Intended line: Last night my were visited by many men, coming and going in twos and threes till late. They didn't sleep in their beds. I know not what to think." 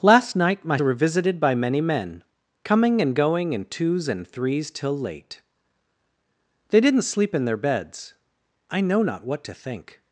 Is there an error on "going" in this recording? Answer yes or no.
no